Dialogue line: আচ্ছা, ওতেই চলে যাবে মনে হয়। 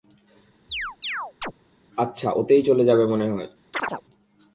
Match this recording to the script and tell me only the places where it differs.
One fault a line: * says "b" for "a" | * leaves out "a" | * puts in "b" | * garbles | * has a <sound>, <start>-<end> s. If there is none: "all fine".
* has a chirp, 0.7-1.5 s
* has a chirp, 3.7-4.0 s